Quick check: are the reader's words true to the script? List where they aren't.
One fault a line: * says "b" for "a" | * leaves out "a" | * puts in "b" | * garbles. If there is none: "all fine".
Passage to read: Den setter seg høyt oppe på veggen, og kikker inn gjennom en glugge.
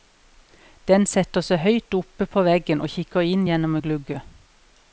all fine